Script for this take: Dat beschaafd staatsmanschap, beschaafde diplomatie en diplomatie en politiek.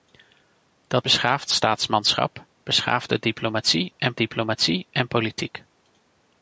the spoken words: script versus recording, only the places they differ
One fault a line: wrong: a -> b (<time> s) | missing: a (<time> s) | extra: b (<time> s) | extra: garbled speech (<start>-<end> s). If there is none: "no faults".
no faults